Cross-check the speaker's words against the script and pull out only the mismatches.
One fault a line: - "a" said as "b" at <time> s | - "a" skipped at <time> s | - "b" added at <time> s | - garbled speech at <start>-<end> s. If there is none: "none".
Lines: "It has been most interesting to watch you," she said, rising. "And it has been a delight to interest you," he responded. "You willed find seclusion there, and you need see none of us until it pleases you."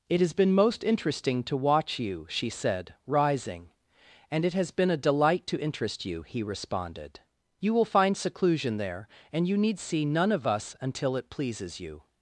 - "willed" said as "will" at 7.7 s